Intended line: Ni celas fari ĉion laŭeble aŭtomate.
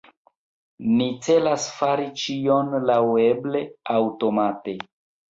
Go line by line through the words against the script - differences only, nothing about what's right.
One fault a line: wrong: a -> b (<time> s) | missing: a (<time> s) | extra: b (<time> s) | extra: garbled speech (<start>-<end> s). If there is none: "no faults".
no faults